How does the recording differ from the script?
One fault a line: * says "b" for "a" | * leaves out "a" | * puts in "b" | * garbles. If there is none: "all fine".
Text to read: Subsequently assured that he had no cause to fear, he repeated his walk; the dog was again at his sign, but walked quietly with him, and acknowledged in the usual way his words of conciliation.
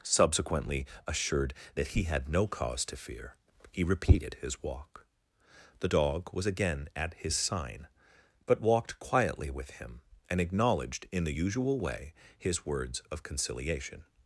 all fine